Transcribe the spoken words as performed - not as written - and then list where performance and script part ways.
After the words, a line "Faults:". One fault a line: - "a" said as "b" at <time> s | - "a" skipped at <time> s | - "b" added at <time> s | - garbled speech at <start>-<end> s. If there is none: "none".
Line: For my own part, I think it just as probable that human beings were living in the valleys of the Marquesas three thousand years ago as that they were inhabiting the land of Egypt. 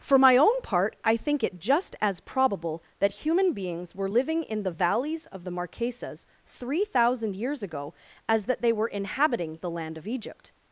For my own part, I think it just as probable that human beings were living in the valleys of the Marquesas three thousand years ago as that they were inhabiting the land of Egypt.
Faults:
none